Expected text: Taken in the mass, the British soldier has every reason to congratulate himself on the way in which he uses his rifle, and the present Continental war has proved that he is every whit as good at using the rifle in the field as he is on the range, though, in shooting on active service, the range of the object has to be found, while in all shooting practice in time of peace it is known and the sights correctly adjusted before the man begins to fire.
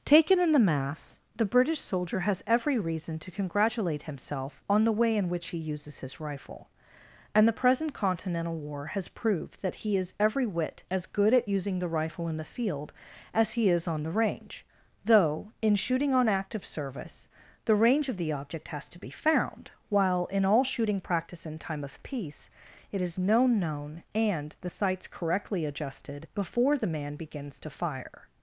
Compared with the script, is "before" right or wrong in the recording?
right